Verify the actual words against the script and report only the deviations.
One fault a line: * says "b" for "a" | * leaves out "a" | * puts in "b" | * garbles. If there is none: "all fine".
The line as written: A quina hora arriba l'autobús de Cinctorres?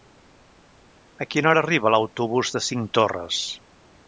all fine